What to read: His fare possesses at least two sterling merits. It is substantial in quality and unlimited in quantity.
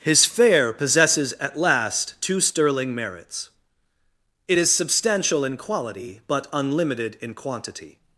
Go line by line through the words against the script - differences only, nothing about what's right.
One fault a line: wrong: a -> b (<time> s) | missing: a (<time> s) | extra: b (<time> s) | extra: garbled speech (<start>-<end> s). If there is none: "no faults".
wrong: least -> last (1.6 s)
wrong: and -> but (6.2 s)